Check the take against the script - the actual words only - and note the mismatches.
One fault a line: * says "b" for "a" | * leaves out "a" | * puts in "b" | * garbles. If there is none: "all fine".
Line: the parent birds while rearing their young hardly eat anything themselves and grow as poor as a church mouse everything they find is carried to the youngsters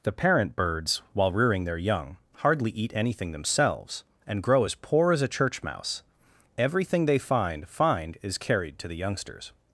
* puts in "find"